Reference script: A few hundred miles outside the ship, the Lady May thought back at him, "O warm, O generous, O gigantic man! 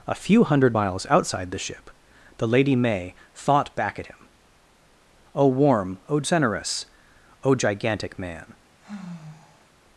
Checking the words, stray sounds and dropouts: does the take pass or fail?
fail